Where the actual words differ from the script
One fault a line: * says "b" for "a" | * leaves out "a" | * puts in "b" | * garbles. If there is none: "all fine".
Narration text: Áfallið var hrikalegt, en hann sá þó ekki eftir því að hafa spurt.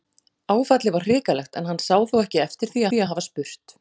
* puts in "því"